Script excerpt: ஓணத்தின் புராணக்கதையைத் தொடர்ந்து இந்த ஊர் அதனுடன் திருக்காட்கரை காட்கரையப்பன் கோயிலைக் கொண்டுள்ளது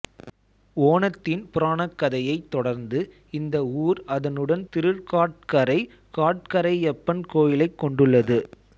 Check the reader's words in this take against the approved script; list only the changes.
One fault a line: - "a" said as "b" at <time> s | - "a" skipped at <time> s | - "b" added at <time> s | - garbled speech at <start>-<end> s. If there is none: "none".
none